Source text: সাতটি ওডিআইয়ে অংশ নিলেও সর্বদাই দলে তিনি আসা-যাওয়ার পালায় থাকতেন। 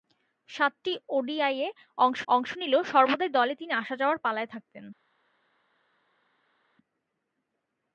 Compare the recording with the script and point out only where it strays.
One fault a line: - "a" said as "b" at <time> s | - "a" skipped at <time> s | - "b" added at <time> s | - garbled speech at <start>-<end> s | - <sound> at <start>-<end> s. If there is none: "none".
- "অংশ" added at 2.3 s